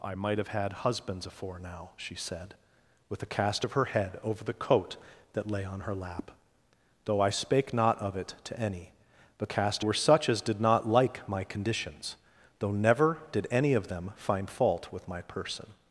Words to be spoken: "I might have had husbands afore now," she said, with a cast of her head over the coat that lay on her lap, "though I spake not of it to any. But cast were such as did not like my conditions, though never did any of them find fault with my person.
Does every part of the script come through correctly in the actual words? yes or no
yes